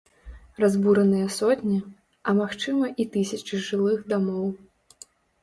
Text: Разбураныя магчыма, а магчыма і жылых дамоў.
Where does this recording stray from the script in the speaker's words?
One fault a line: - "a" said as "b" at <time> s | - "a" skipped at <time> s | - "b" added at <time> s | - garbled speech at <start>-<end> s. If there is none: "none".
- "магчыма" said as "сотні" at 1.4 s
- "тысячы" added at 3.2 s